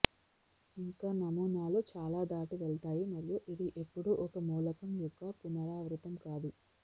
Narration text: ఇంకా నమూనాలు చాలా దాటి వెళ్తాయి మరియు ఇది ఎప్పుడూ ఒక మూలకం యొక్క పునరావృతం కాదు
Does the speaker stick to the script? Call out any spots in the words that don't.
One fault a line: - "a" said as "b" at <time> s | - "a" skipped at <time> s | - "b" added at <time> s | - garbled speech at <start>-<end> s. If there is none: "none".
none